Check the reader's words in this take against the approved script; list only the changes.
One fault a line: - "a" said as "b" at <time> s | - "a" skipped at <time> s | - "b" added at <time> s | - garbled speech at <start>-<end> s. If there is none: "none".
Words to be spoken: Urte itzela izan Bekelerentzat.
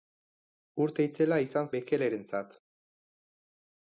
none